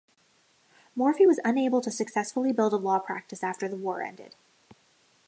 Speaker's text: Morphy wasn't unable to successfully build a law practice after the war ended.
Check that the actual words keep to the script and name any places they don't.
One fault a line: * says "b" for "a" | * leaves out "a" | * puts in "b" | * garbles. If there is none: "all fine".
* says "was" for "wasn't"